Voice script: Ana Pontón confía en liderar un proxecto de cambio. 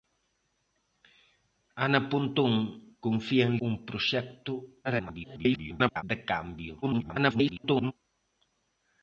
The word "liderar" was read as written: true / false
false